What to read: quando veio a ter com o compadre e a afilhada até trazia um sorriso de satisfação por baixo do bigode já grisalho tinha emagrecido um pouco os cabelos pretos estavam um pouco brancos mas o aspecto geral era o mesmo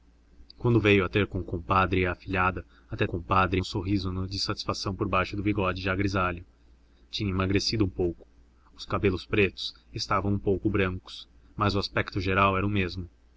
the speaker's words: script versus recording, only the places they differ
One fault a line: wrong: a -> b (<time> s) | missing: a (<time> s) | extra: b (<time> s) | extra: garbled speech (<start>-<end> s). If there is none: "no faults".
wrong: trazia -> compadre (3.0 s)